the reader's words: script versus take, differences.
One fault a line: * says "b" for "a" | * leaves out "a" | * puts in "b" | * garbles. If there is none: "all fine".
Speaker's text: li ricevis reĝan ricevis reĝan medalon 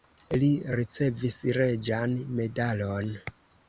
* leaves out "ricevis reĝan"